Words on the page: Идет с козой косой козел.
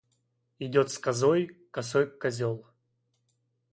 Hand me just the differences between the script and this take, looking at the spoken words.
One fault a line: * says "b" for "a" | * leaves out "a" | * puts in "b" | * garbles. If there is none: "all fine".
all fine